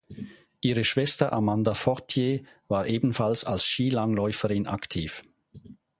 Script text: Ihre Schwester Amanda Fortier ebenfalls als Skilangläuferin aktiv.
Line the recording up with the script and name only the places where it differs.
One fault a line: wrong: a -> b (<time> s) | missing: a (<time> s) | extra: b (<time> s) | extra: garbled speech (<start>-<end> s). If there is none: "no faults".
extra: war (2.7 s)